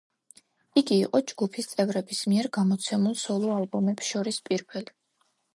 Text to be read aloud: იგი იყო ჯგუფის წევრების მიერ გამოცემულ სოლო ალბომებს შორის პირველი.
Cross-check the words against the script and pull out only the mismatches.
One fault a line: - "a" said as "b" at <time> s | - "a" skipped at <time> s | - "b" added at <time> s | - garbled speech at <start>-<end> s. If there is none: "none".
none